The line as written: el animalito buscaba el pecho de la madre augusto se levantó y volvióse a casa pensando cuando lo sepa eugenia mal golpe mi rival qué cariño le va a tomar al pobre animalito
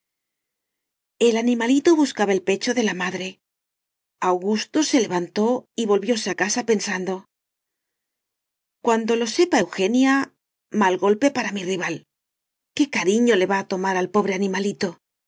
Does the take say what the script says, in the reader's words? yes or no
no